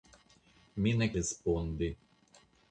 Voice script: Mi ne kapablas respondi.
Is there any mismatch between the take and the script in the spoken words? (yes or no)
yes